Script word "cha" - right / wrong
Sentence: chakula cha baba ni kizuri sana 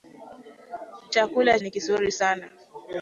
wrong